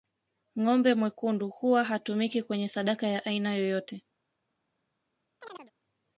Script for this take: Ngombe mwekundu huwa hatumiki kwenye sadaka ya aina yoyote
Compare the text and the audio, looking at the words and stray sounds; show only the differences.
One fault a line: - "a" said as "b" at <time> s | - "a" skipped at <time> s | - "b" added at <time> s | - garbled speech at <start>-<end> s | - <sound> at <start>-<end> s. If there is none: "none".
- chirp at 5.4-5.7 s